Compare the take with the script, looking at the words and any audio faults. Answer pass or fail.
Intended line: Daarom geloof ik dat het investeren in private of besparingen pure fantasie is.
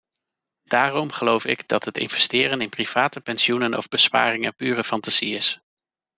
fail